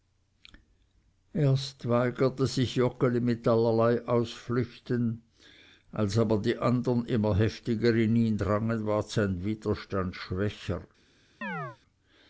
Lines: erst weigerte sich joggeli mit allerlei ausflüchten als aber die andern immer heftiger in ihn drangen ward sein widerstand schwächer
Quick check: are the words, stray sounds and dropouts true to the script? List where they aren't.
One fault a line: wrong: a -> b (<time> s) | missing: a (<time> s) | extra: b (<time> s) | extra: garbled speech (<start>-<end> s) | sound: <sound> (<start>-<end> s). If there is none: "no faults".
sound: chirp (11.4-11.8 s)